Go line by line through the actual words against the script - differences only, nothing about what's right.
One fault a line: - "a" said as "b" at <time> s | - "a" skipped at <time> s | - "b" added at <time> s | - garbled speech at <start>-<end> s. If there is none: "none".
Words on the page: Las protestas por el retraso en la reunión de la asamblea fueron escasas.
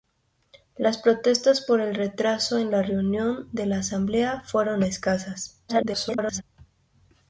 - garbled speech at 5.7-6.4 s